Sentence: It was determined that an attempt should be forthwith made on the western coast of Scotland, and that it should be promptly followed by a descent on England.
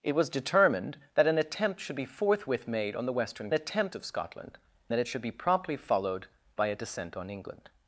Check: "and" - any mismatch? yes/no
yes